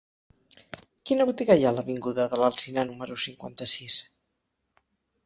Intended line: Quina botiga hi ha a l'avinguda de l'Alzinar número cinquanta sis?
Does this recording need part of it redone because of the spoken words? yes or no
no